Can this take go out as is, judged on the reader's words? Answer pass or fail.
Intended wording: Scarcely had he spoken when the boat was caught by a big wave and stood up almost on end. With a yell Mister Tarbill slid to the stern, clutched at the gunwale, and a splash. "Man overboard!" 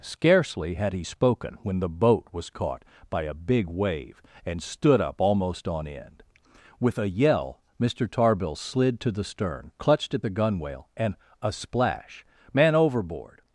pass